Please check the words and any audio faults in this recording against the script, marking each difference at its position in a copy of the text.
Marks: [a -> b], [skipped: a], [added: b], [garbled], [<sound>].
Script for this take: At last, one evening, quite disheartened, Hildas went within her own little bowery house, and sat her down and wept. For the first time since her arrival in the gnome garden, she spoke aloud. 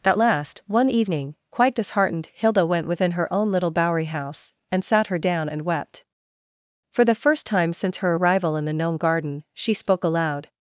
At last, one evening, quite disheartened, [Hildas -> Hilda] went within her own little bowery house, and sat her down and wept. For the first time since her arrival in the gnome garden, she spoke aloud.